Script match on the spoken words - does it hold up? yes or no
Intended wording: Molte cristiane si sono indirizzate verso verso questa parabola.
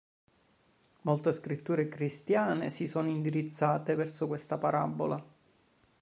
no